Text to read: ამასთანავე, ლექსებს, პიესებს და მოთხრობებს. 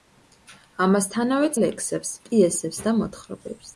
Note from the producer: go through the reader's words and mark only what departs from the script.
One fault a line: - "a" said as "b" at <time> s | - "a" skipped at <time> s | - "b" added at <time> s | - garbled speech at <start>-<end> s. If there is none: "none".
none